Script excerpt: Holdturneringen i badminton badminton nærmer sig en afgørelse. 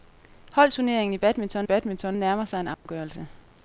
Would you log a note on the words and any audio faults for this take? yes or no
yes